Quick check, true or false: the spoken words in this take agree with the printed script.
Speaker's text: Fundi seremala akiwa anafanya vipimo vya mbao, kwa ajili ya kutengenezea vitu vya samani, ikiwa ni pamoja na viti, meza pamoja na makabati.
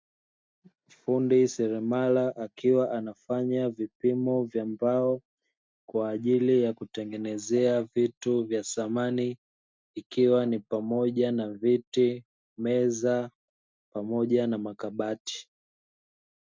true